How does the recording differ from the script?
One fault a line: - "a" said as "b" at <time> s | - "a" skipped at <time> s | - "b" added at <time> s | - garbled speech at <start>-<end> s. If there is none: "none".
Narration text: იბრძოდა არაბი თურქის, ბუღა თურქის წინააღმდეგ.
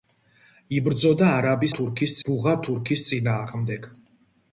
none